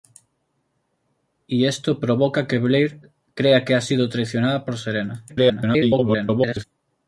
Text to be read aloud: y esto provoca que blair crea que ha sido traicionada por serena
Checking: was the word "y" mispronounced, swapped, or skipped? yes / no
no